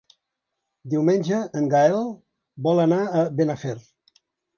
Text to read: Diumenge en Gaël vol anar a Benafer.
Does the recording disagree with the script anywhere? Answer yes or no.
no